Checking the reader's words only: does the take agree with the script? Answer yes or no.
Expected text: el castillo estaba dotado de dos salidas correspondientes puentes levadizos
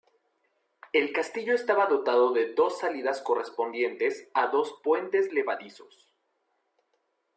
no